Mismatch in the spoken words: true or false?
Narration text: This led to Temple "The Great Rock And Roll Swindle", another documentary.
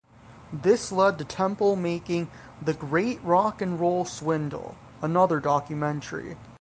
true